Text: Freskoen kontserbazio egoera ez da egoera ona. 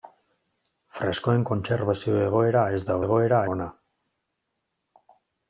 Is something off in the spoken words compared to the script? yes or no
no